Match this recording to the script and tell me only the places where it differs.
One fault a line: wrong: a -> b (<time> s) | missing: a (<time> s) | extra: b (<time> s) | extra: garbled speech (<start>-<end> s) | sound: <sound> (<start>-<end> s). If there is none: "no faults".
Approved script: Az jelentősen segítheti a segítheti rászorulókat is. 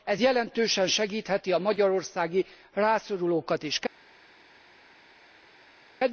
wrong: Az -> Ez (0.0 s)
wrong: segítheti -> magyarországi (1.6 s)